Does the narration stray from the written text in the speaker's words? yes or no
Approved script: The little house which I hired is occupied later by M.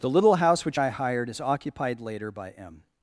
no